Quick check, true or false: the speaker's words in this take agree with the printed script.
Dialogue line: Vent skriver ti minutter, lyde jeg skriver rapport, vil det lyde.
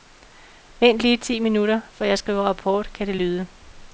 false